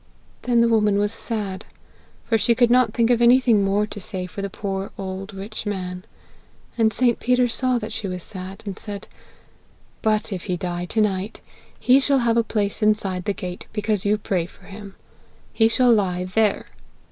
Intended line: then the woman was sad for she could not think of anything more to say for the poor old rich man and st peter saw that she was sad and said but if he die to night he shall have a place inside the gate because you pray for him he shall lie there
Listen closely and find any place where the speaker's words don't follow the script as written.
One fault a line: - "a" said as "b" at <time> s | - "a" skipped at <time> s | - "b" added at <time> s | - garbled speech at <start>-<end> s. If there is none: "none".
none